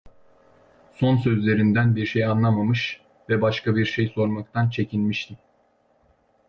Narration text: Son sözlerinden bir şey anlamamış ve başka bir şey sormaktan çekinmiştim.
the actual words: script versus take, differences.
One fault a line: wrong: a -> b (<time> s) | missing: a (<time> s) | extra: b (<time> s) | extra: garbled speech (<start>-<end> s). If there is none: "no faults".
no faults